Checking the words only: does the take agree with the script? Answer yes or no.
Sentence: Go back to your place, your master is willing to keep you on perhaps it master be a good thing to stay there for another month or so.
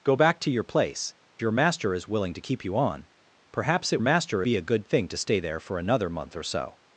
yes